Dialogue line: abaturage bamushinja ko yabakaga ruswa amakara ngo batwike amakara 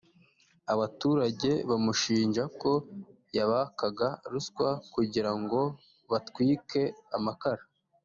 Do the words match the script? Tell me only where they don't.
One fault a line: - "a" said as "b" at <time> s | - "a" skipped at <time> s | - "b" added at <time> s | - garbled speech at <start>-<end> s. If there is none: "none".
- "amakara" said as "kugira" at 4.9 s